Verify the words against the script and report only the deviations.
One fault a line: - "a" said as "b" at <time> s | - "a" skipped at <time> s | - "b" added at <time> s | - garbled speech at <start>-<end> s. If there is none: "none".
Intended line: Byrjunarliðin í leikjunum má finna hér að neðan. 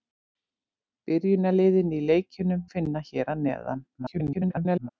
- "má" skipped at 2.7 s
- garbled speech at 4.0-4.9 s